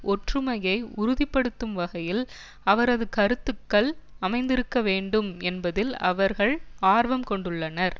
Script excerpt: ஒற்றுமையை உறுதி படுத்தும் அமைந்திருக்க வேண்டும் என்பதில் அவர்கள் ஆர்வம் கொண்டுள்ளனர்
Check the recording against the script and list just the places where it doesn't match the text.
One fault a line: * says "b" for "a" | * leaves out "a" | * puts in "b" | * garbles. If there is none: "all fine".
* puts in "வகையில் அவரது கருத்துக்கள்"